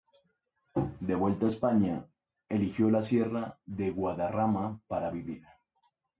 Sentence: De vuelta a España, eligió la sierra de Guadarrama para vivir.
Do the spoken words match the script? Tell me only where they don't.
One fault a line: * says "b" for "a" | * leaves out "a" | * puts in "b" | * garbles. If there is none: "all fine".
all fine